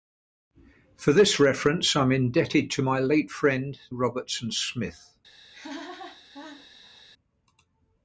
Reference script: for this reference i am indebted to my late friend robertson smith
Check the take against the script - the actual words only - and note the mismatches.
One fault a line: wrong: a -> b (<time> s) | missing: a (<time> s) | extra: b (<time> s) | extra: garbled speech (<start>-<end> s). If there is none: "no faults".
no faults